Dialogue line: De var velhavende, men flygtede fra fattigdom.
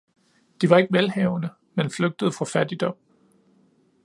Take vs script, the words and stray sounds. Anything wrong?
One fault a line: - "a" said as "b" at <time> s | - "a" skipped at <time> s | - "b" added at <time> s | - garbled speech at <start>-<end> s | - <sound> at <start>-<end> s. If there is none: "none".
- "ikke" added at 0.8 s